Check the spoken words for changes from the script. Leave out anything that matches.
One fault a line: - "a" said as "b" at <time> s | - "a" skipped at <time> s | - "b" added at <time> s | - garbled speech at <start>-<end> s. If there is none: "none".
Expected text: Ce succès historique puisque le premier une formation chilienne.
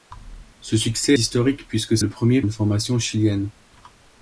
none